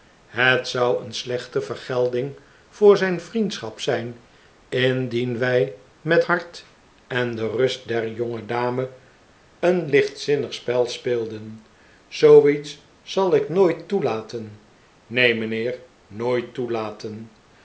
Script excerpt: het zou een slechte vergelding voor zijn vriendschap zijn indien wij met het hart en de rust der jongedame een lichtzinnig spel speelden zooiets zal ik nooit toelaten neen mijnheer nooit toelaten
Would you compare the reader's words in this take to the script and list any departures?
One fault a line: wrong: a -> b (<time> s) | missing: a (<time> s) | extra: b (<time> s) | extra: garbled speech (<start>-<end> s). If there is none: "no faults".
missing: het (6.2 s)